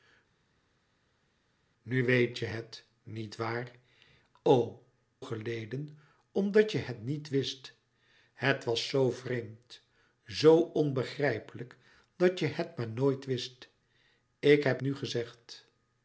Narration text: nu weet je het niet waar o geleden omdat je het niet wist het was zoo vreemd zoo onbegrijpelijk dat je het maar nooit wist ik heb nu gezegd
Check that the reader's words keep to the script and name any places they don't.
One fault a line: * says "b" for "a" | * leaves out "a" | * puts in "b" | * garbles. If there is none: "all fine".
all fine